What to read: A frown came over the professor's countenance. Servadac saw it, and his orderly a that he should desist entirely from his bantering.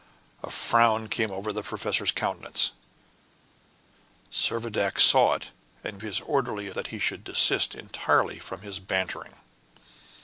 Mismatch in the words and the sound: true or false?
false